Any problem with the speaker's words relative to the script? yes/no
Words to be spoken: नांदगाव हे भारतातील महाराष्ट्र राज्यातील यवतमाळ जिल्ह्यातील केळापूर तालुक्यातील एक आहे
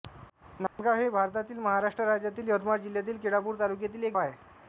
no